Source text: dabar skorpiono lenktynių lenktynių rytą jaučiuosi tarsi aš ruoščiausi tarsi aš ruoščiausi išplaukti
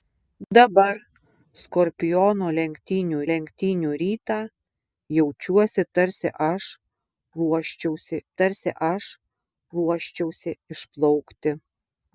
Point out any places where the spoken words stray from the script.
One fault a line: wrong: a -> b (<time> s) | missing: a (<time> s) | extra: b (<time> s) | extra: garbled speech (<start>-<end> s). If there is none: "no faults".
no faults